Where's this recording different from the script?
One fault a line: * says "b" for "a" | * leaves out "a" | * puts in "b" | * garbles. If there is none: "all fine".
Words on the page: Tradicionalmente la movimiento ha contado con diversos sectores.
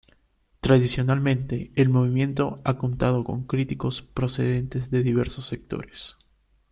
* says "el" for "la"
* puts in "críticos procedentes de"